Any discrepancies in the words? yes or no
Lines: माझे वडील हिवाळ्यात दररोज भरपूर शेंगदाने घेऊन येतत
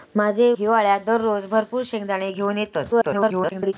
yes